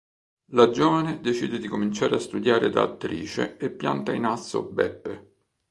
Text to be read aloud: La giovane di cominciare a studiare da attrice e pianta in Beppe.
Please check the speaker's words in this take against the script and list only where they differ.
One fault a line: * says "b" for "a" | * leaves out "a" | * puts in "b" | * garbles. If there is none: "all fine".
* puts in "decide"
* puts in "asso"